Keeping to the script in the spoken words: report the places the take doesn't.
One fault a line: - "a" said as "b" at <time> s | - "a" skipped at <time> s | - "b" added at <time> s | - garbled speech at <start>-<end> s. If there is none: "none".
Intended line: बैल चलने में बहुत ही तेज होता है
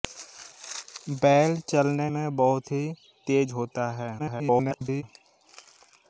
- garbled speech at 4.2-5.0 s